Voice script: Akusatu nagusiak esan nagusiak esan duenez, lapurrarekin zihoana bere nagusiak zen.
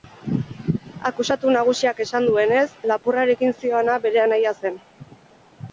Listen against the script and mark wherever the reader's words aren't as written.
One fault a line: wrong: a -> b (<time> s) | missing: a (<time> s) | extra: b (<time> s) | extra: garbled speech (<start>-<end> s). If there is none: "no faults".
missing: nagusiak esan (2.2 s)
wrong: nagusiak -> anaia (4.3 s)